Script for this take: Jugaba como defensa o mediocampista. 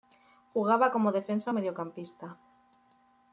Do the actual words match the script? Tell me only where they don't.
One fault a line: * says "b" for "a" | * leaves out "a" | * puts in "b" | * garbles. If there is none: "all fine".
all fine